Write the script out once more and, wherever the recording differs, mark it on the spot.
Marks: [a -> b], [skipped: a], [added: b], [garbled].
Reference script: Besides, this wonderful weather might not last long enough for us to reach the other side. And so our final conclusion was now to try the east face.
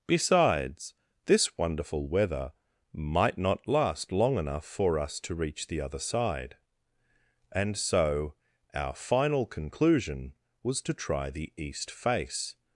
Besides, this wonderful weather might not last long enough for us to reach the other side. And so our final conclusion was [skipped: now] to try the east face.